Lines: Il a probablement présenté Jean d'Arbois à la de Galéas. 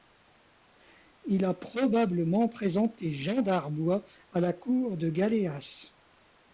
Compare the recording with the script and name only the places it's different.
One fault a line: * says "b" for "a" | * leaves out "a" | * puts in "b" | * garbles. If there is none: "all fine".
* puts in "cour"